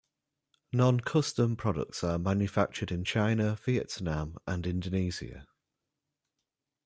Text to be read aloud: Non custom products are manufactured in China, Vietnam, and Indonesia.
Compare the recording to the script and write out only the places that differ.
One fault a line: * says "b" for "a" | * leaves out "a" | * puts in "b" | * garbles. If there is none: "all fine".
all fine